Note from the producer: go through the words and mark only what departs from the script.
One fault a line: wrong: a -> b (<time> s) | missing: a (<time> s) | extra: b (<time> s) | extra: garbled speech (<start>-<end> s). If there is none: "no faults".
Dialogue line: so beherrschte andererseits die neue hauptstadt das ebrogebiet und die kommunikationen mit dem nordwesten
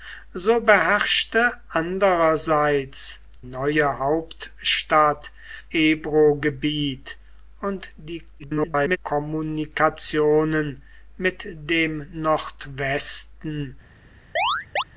missing: die (3.2 s)
missing: das (5.3 s)
extra: garbled speech (8.4-9.0 s)